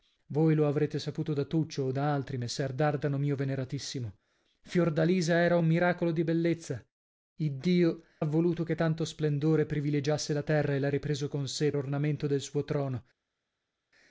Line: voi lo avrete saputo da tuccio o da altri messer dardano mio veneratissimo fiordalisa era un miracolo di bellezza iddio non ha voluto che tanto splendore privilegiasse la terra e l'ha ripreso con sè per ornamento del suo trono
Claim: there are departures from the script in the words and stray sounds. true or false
true